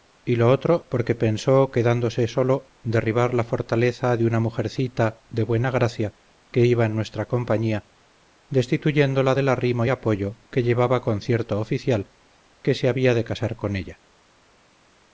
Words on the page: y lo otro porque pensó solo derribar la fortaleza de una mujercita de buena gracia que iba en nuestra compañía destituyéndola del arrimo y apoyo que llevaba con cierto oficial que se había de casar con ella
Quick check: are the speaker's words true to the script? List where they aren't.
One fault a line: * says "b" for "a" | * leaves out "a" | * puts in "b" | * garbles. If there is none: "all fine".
* puts in "quedándose"